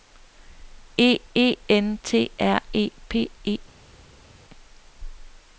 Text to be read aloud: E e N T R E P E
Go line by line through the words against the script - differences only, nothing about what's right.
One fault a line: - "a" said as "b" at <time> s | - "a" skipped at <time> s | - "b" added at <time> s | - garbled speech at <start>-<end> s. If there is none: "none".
none